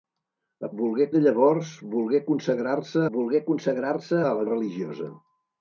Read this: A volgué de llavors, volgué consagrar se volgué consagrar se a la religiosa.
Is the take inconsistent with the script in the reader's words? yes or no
no